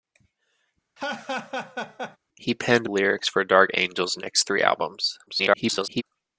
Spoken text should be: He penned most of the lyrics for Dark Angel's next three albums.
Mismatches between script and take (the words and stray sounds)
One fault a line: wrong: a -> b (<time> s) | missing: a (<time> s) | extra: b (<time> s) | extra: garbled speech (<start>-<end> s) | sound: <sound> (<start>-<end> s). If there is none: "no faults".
sound: laugh (1.0-2.2 s)
missing: most of the (2.9 s)
extra: garbled speech (5.3-6.0 s)